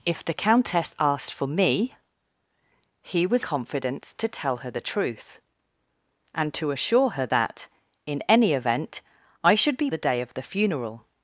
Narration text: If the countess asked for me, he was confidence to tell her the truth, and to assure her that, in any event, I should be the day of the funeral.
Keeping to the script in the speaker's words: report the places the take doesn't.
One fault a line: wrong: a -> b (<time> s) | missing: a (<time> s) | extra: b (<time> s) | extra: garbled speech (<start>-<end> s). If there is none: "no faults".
no faults